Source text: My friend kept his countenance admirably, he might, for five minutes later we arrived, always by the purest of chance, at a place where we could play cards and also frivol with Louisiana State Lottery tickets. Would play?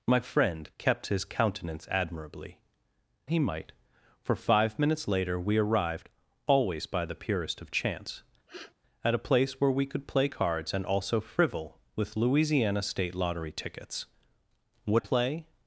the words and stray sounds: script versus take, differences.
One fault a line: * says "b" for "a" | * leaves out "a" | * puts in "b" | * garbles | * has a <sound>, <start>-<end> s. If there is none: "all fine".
* has a sniff, 8.5-8.7 s